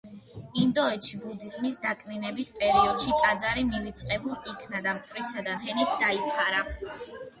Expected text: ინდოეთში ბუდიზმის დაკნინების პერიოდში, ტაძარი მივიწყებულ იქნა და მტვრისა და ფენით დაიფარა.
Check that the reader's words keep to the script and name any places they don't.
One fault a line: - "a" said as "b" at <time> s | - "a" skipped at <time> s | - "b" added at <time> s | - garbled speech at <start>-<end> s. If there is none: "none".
none